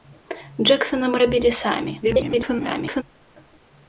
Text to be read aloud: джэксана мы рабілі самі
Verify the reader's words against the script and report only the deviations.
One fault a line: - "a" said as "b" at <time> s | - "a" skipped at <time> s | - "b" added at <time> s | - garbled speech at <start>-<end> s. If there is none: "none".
- garbled speech at 2.0-3.0 s